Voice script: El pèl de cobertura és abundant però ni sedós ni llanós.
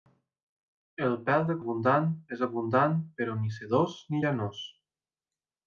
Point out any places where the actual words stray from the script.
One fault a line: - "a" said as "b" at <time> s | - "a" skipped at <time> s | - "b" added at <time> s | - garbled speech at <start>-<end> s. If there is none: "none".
- "cobertura" said as "abundant" at 1.6 s